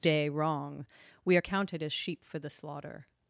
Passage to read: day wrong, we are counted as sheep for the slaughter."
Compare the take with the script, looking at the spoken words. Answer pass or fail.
pass